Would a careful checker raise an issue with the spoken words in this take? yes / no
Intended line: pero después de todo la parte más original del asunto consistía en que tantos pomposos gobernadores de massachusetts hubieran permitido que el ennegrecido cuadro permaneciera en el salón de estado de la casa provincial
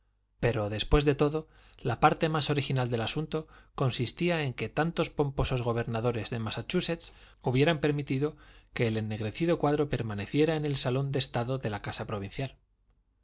no